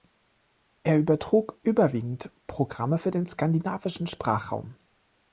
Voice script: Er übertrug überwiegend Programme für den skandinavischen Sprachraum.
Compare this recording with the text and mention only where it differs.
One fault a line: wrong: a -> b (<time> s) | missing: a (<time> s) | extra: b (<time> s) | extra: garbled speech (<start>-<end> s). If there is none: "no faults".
no faults